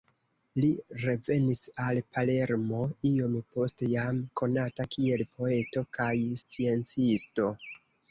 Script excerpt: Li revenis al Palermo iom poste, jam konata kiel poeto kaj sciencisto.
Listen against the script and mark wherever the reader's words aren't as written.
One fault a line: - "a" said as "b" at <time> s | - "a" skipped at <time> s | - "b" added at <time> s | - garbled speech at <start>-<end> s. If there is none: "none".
none